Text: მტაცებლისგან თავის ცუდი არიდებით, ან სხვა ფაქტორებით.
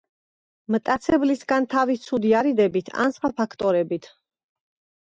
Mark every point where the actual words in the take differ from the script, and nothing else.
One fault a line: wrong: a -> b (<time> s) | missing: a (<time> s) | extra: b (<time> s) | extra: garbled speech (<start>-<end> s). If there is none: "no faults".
no faults